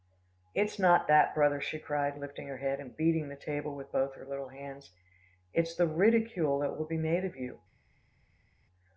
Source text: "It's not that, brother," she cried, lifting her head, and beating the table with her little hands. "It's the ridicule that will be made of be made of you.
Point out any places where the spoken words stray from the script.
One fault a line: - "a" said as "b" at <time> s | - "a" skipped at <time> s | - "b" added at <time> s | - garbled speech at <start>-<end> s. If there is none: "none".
- "both" added at 3.9 s
- "be made of" skipped at 7.3 s